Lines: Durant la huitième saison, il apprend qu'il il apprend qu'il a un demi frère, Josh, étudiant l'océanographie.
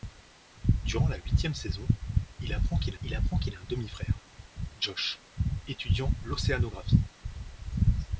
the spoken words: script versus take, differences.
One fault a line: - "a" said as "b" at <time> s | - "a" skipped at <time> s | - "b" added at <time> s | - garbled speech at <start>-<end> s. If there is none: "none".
none